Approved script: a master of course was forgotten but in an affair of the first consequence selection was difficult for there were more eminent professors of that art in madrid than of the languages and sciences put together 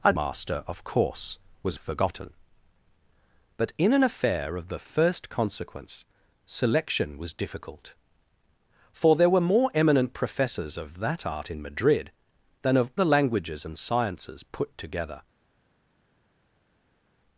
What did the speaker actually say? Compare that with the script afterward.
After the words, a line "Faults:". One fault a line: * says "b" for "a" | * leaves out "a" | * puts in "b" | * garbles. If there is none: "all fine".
a master of course was forgotten but in an affair of the first consequence selection was difficult for there were more eminent professors of that art in madrid than of the languages and sciences put together
Faults:
all fine